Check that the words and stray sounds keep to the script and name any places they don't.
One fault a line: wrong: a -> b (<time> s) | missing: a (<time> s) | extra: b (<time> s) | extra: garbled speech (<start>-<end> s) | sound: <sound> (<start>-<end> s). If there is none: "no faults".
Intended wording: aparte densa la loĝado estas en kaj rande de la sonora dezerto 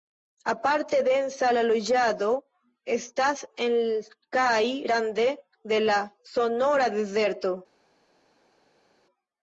no faults